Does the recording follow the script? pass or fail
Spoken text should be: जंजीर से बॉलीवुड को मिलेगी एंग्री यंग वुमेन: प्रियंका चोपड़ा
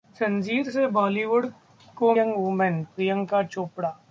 fail